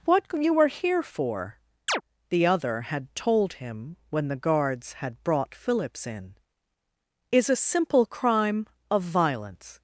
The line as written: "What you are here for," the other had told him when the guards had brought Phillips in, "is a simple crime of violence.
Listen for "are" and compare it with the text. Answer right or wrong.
wrong